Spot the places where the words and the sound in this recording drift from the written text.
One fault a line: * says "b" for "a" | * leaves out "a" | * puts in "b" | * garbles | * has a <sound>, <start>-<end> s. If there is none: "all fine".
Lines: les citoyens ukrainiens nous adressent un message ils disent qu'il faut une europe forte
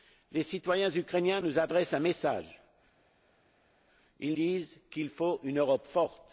all fine